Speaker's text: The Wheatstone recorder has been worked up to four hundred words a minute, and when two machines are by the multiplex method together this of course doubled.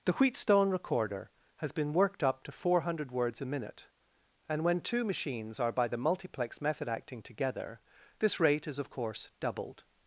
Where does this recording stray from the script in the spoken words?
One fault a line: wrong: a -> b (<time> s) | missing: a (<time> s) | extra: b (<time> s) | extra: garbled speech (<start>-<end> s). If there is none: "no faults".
extra: acting (6.9 s)
extra: rate is (8.4 s)